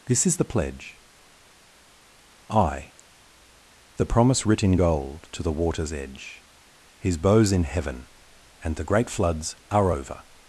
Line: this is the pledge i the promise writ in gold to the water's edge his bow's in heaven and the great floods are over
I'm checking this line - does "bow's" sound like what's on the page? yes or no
yes